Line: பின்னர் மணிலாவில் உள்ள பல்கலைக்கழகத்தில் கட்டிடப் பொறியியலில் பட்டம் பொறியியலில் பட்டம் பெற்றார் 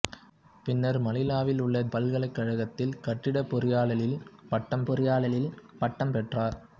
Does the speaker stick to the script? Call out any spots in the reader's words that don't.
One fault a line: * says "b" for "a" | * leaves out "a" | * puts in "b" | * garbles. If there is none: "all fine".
all fine